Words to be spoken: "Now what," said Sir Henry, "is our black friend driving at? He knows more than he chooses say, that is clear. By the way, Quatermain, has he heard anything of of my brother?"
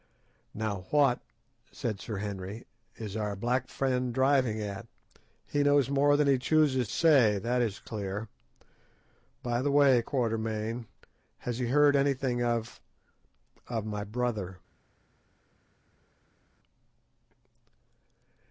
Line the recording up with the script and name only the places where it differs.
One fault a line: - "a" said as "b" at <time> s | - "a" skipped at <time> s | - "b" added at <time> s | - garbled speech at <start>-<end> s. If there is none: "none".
none